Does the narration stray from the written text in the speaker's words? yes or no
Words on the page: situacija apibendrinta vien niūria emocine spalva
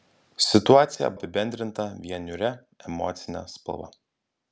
no